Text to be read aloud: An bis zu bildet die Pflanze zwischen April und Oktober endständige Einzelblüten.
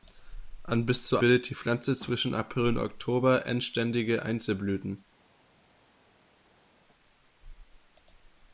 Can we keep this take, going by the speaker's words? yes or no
yes